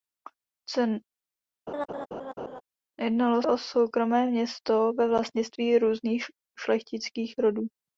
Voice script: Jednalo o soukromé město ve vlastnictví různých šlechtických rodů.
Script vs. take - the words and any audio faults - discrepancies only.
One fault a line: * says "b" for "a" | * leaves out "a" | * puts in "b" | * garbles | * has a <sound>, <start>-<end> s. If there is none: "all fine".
* has a laugh, 1.7-2.6 s